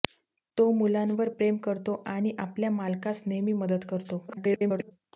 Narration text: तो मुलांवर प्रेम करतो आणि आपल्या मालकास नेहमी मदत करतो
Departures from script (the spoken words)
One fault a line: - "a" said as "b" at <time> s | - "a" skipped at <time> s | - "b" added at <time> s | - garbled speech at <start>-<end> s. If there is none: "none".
- garbled speech at 4.3-4.9 s